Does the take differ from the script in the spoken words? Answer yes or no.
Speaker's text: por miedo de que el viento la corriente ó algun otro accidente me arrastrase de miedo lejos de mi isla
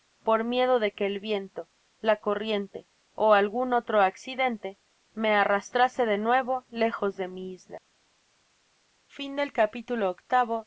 yes